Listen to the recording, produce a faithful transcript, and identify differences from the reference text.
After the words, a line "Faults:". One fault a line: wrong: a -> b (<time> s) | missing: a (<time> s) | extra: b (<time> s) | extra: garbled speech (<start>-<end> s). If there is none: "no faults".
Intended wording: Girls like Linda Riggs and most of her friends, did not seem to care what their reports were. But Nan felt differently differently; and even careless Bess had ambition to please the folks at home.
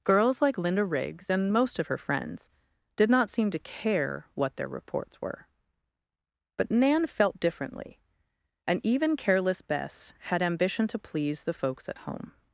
Girls like Linda Riggs and most of her friends, did not seem to care what their reports were. But Nan felt differently; and even careless Bess had ambition to please the folks at home.
Faults:
missing: differently (8.0 s)